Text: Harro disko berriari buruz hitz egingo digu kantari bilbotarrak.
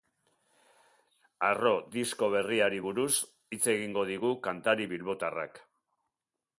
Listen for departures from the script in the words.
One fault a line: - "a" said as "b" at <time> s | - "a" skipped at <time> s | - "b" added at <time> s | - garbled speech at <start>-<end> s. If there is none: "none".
none